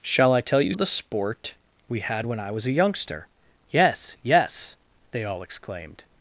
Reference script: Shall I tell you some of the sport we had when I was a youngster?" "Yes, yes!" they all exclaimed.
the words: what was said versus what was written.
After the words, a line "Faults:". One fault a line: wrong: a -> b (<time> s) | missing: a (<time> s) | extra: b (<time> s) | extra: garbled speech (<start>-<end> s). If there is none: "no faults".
Shall I tell you of the sport we had when I was a youngster?" "Yes, yes!" they all exclaimed.
Faults:
missing: some (0.7 s)